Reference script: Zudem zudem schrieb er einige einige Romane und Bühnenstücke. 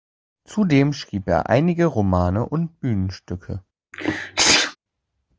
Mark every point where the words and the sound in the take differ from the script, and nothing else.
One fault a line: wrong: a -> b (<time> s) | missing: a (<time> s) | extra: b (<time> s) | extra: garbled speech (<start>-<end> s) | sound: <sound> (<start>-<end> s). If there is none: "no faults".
missing: zudem (0.9 s)
missing: einige (1.9 s)
sound: sneeze (3.9-4.8 s)